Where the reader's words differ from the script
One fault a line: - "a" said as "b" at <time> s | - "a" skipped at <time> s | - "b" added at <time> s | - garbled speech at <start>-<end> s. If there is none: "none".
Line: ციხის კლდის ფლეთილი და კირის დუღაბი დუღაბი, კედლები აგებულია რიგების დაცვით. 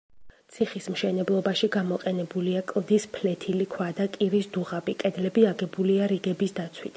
- "მშენებლობაში გამოყენებულია" added at 0.9 s
- "ქვა" added at 3.7 s
- "დუღაბი" skipped at 5.0 s